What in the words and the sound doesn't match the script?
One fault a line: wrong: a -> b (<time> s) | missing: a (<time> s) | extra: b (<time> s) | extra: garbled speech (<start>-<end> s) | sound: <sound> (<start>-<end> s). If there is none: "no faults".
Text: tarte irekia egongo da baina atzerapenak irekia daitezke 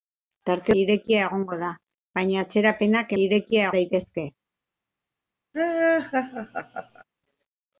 sound: laugh (5.5-7.0 s)